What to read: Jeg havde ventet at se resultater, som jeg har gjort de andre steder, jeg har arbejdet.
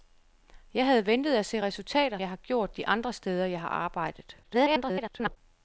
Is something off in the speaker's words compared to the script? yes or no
yes